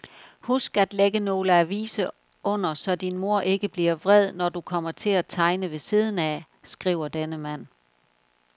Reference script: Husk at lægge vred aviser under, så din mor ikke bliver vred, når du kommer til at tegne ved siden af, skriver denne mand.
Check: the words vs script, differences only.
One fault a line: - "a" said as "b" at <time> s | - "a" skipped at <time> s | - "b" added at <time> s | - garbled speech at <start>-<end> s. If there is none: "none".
- "vred" said as "nogle" at 1.2 s